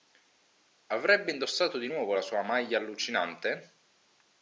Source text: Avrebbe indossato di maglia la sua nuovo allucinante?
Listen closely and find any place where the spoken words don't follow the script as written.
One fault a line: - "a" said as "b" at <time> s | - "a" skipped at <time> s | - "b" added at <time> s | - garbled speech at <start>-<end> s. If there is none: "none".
- "maglia" said as "nuovo" at 1.8 s
- "nuovo" said as "maglia" at 2.4 s